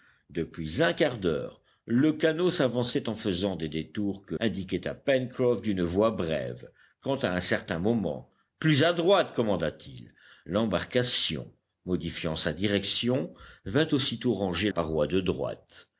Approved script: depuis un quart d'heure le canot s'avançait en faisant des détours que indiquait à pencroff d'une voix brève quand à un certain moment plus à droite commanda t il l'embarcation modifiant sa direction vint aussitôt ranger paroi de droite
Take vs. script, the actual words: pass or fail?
pass